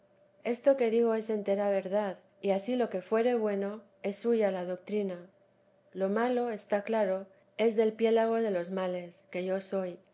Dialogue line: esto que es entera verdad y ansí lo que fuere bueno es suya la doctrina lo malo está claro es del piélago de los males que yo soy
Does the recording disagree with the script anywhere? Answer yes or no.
yes